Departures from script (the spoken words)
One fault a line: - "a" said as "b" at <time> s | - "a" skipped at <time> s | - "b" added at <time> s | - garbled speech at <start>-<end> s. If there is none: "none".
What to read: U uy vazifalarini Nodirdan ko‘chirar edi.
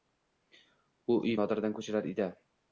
- "vazifalarini" skipped at 1.4 s